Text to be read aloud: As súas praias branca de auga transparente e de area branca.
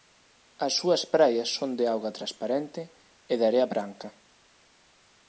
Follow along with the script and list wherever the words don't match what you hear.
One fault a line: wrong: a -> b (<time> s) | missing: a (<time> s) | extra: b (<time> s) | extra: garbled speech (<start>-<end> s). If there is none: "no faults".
wrong: branca -> son (1.6 s)